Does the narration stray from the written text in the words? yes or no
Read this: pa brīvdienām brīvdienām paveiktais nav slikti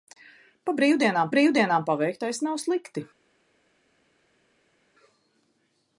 no